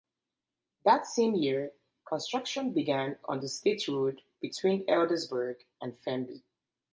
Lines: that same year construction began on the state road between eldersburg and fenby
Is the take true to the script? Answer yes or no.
yes